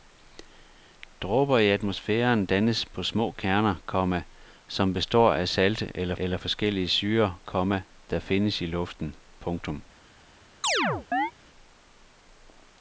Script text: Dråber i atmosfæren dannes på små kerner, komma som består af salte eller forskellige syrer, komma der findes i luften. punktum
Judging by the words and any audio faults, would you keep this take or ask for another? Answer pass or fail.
fail